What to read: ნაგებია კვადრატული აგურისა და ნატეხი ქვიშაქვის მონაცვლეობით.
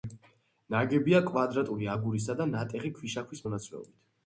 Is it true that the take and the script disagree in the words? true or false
false